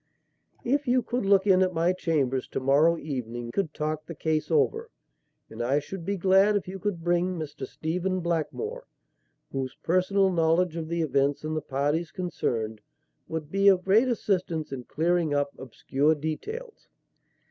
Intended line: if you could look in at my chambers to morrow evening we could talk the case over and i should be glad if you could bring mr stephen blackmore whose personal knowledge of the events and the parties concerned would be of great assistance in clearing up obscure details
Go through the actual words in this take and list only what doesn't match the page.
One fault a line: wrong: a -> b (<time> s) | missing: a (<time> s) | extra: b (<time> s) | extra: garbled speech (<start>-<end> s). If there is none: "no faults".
missing: we (3.5 s)